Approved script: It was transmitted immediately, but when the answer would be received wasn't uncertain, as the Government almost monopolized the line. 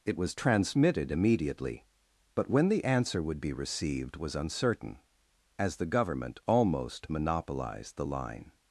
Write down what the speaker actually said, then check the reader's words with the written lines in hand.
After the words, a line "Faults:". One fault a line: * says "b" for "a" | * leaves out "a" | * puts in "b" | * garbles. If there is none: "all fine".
It was transmitted immediately, but when the answer would be received was uncertain, as the Government almost monopolized the line.
Faults:
* says "was" for "wasn't"